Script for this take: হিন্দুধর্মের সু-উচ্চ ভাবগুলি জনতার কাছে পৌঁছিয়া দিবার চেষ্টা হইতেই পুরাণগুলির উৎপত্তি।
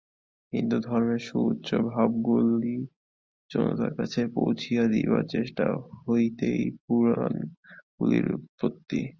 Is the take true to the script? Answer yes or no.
yes